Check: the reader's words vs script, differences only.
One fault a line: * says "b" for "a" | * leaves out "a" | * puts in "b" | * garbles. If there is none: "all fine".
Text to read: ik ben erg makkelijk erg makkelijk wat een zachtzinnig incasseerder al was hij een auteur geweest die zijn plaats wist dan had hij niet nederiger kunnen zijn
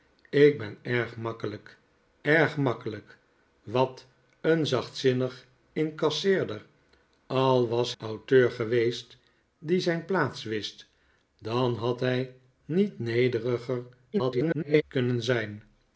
* leaves out "hij een"
* garbles